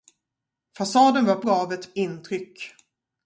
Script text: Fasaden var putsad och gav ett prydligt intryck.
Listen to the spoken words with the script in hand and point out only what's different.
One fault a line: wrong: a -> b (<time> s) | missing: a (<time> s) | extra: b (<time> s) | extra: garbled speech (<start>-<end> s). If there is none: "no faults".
missing: putsad och (1.4 s)
missing: prydligt (1.9 s)